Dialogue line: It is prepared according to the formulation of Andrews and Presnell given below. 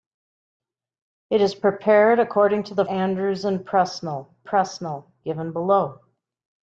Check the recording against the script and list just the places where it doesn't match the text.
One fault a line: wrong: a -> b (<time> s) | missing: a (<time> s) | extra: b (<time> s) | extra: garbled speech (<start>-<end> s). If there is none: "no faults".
missing: formulation of (2.9 s)
extra: Presnell (4.4 s)